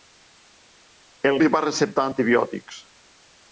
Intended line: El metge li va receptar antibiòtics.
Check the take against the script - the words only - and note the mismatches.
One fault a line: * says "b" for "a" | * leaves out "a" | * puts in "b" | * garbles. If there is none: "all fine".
* leaves out "metge"